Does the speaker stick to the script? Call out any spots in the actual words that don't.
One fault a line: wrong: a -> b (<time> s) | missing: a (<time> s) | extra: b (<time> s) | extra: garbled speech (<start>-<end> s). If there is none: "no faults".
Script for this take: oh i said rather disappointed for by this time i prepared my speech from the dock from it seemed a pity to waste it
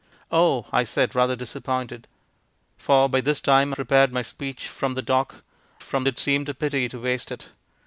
no faults